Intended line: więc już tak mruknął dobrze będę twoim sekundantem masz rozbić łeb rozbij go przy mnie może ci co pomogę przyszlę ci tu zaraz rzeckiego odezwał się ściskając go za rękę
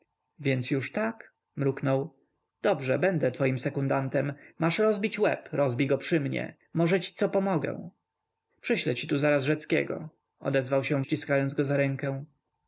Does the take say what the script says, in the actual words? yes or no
yes